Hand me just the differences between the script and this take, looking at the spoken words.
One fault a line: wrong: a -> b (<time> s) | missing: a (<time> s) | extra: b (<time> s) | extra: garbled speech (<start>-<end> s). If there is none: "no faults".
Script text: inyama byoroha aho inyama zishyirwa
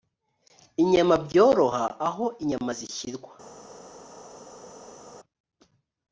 no faults